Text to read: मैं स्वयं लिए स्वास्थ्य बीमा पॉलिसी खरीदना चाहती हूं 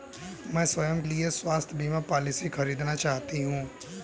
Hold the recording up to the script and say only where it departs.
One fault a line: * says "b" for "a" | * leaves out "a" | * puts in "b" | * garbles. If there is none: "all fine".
all fine